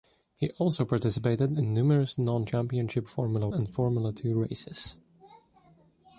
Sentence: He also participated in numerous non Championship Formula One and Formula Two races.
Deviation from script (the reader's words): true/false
true